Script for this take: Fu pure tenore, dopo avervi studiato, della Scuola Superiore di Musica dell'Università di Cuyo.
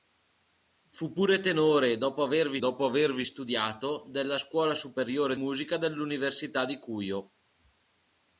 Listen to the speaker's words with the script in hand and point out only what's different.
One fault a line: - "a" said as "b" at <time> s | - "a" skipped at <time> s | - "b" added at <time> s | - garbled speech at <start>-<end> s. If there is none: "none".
- "dopo avervi" added at 2.6 s
- "di" skipped at 5.3 s